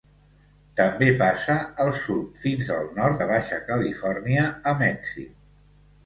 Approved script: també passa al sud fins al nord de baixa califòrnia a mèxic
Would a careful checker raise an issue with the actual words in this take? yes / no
no